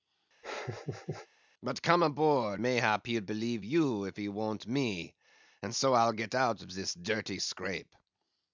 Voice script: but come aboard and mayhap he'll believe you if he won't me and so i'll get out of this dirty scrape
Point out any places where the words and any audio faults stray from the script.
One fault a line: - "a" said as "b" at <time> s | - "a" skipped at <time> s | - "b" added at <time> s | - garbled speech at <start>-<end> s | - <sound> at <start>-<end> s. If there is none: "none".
- laugh at 0.4-1.3 s
- "and" skipped at 2.6 s